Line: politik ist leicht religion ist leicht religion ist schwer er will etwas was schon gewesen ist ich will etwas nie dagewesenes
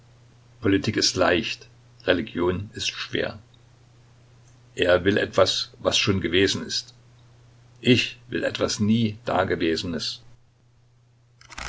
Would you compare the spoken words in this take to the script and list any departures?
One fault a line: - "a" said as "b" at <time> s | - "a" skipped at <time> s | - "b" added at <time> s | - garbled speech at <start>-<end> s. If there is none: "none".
- "leicht religion ist" skipped at 2.9 s